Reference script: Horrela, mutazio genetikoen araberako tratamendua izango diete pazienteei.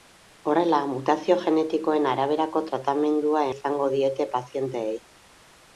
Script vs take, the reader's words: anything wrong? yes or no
no